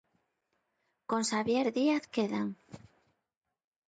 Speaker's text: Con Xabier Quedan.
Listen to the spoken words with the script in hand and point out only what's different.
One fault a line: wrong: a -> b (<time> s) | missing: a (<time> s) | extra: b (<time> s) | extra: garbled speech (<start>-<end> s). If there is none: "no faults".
extra: Díaz (1.7 s)